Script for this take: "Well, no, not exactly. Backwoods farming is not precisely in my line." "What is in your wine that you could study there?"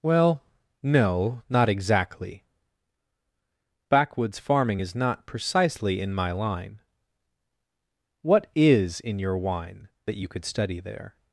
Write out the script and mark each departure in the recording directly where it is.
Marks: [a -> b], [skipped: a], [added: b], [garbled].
"Well, no, not exactly. Backwoods farming is not precisely in my line." "What is in your wine that you could study there?"